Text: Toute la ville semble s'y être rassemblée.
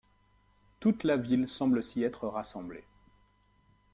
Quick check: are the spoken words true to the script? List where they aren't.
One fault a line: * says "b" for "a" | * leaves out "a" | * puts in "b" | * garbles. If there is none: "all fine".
all fine